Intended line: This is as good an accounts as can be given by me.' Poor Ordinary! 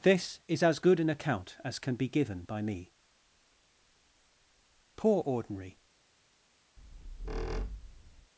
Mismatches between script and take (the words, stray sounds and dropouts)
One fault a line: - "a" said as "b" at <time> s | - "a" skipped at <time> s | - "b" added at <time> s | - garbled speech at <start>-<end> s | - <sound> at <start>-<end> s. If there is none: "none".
- "accounts" said as "account" at 1.1 s
- squeak at 6.8-8.3 s